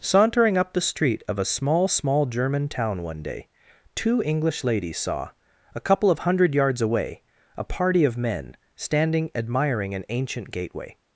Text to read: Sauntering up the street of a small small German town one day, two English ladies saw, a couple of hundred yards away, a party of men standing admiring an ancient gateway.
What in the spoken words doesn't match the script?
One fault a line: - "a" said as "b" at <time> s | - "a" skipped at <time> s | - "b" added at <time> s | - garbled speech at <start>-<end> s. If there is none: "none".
none